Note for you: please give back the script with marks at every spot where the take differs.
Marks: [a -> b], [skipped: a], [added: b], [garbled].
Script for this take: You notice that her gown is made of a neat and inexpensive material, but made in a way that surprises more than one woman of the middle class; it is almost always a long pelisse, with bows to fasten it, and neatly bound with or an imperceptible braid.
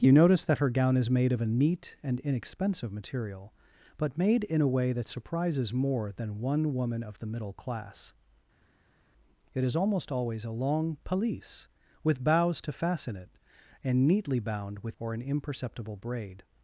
You notice that her gown is made of a neat and inexpensive material, but made in a way that surprises more than one woman of the middle class; it is almost always a long pelisse, with bows to fasten it, and neatly bound with or an imperceptible braid.